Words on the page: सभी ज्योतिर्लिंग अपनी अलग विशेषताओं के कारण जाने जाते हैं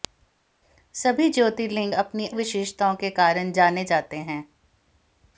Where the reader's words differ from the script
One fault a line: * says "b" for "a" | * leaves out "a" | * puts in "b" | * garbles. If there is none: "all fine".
* leaves out "अलग"